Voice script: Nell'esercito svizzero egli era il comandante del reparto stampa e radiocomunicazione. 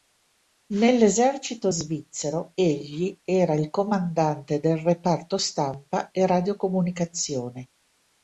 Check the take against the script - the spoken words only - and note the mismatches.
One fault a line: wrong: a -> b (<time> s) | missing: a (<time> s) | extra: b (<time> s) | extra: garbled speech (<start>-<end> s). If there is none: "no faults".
no faults